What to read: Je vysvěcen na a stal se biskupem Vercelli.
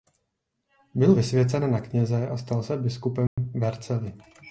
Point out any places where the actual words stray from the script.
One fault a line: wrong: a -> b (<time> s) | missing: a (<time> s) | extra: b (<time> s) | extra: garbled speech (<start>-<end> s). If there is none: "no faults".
wrong: Je -> Byl (0.9 s)
extra: kněze (1.8 s)